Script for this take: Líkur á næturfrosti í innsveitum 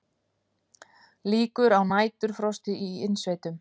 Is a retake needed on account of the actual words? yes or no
no